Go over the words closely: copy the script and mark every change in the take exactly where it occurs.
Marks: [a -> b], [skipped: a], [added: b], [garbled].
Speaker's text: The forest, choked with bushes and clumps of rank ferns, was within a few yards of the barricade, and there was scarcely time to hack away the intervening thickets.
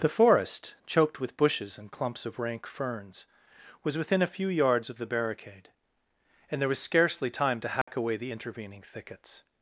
The forest, choked with bushes and clumps of rank ferns, was within a few yards of the barricade, and there was scarcely time to hack away the intervening thickets.